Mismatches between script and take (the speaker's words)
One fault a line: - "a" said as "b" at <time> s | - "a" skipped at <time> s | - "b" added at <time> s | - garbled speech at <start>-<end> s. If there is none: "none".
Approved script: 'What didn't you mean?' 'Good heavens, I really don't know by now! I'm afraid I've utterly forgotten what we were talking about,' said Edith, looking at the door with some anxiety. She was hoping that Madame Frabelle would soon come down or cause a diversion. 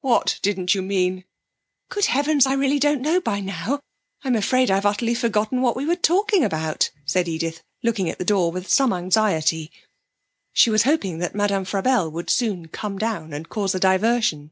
- "or" said as "and" at 13.3 s